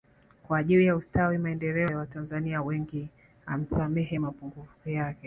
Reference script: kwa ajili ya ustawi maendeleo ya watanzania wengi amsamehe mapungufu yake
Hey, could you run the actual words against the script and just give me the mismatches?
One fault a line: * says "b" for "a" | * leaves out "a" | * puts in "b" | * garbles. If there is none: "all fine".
all fine